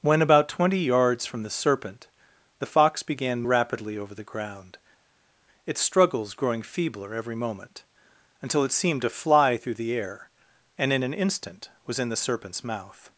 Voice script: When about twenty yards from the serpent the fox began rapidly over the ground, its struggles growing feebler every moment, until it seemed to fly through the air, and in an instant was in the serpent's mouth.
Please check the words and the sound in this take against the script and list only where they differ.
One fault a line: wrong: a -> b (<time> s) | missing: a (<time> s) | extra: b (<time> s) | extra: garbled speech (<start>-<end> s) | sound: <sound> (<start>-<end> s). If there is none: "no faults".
no faults